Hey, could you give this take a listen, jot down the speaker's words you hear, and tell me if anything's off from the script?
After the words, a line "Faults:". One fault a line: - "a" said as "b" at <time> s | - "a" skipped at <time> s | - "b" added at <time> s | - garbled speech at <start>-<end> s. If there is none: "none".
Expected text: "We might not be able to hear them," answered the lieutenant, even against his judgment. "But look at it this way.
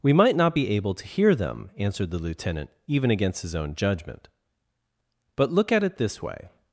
"We might not be able to hear them," answered the lieutenant, even against his own judgment. "But look at it this way.
Faults:
- "own" added at 3.5 s